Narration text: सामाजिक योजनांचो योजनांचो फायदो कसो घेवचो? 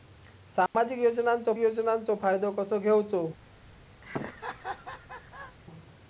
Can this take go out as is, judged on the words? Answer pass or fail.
pass